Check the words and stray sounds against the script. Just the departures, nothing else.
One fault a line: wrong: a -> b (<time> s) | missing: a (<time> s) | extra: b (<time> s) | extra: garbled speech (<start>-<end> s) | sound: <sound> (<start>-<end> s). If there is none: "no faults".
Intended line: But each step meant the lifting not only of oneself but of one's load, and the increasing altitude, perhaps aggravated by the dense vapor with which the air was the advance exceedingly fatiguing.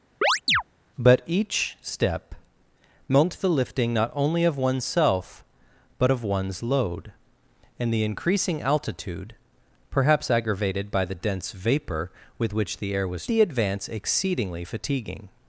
sound: chirp (0.2-0.6 s)